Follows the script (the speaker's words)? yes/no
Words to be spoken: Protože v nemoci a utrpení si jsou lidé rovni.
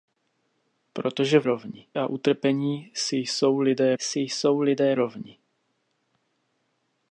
no